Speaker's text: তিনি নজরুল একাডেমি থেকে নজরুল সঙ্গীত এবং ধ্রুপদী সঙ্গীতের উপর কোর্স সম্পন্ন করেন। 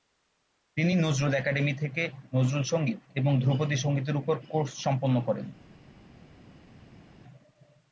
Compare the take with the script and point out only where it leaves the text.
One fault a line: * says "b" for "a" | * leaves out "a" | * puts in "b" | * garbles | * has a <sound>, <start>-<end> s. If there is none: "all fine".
all fine